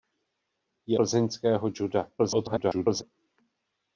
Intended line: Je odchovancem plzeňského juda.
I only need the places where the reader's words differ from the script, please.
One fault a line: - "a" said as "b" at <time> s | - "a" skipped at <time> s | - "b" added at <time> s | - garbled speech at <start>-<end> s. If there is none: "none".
- "odchovancem" skipped at 1.0 s
- garbled speech at 2.2-3.0 s